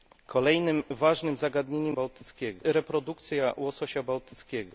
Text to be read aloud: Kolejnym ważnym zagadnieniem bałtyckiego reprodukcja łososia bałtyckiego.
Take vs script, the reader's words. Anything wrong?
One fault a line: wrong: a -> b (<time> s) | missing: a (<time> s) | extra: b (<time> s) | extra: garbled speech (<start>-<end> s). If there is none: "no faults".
no faults